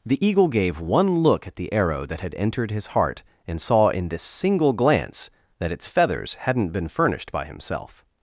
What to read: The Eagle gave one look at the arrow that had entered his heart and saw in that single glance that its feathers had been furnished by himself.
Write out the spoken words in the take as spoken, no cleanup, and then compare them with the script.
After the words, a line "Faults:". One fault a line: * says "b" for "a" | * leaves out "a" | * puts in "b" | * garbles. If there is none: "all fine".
The Eagle gave one look at the arrow that had entered his heart and saw in this single glance that its feathers hadn't been furnished by himself.
Faults:
* says "this" for "that"
* says "hadn't" for "had"